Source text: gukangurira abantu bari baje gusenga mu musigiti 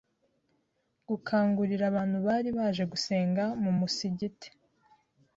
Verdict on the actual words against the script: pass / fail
pass